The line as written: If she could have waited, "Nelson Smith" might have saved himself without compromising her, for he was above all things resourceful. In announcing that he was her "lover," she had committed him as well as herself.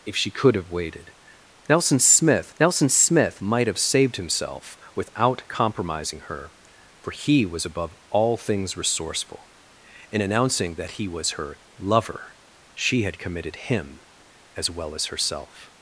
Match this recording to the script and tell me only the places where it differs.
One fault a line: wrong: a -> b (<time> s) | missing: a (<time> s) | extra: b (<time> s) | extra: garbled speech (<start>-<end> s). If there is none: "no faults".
extra: nelson Smith (2.6 s)